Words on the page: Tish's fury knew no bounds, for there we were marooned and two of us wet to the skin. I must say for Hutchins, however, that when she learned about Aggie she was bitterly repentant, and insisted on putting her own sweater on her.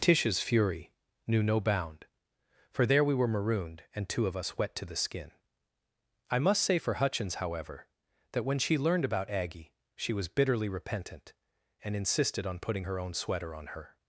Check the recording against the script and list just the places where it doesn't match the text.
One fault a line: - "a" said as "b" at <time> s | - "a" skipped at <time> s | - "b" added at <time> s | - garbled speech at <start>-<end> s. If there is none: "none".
- "bounds" said as "bound" at 1.6 s